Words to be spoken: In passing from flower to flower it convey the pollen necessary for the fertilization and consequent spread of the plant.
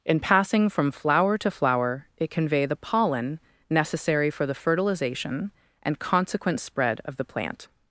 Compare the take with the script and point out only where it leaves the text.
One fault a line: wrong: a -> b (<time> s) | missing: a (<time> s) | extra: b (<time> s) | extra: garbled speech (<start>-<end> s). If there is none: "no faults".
no faults